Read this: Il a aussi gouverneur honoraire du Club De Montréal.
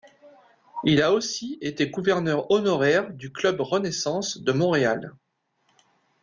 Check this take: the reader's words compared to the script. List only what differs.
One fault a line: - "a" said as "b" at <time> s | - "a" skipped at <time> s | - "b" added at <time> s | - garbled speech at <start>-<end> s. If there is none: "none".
- "été" added at 1.6 s
- "Renaissance" added at 3.6 s